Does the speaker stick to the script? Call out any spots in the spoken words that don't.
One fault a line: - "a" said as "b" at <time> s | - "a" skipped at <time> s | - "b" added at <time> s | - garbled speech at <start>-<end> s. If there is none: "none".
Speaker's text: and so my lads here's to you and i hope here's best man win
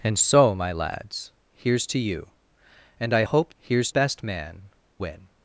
none